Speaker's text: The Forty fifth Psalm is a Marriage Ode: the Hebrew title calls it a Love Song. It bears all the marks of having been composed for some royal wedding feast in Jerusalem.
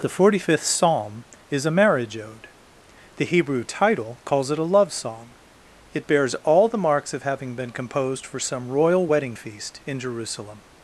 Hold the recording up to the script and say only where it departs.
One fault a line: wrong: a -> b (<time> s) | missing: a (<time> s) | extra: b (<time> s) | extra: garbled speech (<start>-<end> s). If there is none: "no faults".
no faults